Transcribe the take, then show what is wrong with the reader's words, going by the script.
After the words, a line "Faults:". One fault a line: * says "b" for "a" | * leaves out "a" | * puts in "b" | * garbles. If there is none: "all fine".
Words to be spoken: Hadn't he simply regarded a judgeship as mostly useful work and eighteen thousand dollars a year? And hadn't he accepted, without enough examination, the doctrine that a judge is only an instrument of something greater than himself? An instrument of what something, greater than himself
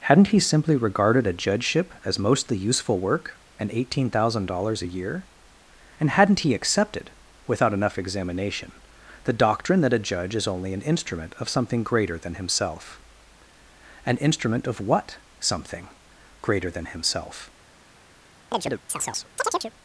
Hadn't he simply regarded a judgeship as mostly useful work and eighteen thousand dollars a year? And hadn't he accepted, without enough examination, the doctrine that a judge is only an instrument of something greater than himself? An instrument of what something, greater than himself
Faults:
all fine